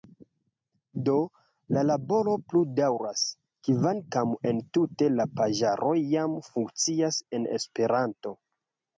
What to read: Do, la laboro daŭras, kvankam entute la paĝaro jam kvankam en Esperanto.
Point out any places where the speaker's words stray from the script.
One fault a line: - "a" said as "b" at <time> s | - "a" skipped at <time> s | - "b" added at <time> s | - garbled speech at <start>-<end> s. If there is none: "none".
- "plu" added at 2.5 s
- "kvankam" said as "funkcias" at 6.5 s